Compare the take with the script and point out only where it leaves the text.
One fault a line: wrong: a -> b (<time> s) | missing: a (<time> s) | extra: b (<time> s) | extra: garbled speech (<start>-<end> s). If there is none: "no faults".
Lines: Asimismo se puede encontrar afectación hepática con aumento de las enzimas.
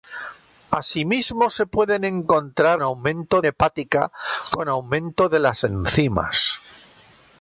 wrong: afectación -> aumento (2.8 s)